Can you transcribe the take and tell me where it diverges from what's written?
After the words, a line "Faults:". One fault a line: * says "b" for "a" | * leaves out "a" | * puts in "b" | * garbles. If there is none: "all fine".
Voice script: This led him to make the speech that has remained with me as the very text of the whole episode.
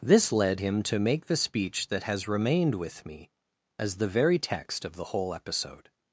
This led him to make the speech that has remained with me as the very text of the whole episode.
Faults:
all fine